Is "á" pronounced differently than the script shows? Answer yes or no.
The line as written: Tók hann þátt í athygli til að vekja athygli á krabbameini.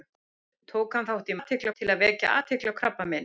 no